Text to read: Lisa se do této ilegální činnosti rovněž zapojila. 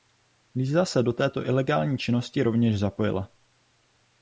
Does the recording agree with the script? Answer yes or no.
yes